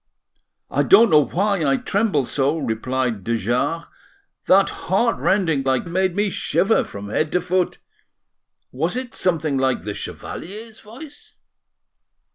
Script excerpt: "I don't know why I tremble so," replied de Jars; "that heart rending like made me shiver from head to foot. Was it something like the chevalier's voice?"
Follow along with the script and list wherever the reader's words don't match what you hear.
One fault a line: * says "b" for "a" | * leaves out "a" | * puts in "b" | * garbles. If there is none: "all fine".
all fine